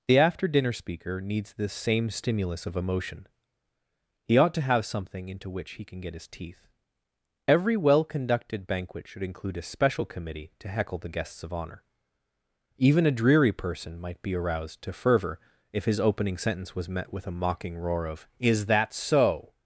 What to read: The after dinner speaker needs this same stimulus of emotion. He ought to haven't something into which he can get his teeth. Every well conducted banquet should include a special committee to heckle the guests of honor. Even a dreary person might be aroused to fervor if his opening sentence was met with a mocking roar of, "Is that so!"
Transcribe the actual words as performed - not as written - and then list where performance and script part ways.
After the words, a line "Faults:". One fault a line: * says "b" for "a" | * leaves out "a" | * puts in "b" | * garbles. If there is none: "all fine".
The after dinner speaker needs this same stimulus of emotion. He ought to have something into which he can get his teeth. Every well conducted banquet should include a special committee to heckle the guests of honor. Even a dreary person might be aroused to fervor if his opening sentence was met with a mocking roar of, "Is that so!"
Faults:
* says "have" for "haven't"